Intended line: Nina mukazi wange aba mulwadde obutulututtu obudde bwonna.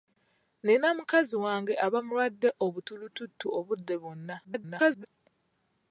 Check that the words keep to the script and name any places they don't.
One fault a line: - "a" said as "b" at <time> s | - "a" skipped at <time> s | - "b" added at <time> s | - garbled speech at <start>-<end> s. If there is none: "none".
- garbled speech at 4.4-5.1 s